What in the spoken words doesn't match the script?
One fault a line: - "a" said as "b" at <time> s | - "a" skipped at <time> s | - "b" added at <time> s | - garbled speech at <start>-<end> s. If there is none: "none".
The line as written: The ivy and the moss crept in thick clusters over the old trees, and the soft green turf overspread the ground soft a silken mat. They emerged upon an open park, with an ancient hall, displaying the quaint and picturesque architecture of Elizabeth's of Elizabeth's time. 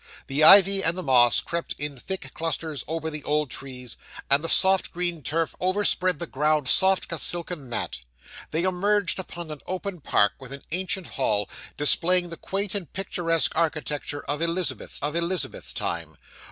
none